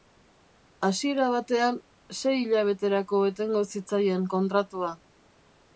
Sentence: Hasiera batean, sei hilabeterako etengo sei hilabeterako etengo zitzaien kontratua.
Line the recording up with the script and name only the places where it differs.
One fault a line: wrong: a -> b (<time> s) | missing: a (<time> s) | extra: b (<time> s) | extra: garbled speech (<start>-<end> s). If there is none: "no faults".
missing: sei hilabeterako etengo (3.6 s)